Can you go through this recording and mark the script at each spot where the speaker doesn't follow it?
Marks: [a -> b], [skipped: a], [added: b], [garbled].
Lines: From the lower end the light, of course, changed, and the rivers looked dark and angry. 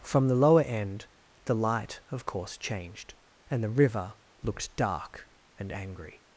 From the lower end the light, of course, changed, and the [rivers -> river] looked dark and angry.